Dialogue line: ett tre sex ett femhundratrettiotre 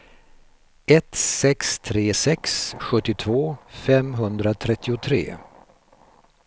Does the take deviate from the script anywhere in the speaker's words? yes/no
yes